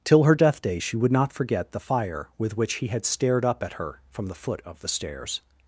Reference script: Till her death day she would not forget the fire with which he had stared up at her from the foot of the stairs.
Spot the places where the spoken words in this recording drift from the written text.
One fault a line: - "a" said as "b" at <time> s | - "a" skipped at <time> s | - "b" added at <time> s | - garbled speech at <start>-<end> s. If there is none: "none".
none